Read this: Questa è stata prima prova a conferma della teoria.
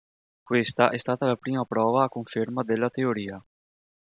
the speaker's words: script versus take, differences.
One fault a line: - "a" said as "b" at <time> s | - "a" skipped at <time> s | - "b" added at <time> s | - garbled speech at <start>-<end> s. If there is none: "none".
- "la" added at 1.2 s